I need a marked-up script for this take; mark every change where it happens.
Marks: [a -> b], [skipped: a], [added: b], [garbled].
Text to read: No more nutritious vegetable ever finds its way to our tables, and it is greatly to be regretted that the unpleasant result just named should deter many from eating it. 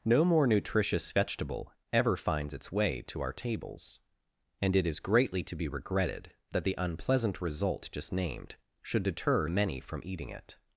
No more nutritious vegetable ever finds its way to our tables, and it is greatly to be regretted that the unpleasant result just named should deter many from eating it.